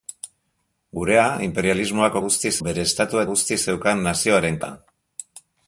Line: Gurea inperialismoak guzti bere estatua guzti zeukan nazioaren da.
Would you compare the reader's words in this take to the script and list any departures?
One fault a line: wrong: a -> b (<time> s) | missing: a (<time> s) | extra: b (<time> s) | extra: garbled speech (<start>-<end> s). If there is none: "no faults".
no faults